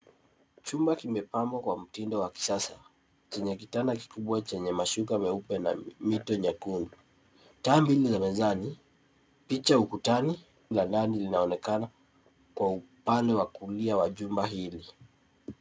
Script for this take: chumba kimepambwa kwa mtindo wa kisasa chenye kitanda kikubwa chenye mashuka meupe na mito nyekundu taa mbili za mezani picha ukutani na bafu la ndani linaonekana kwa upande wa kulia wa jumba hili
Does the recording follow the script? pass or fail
fail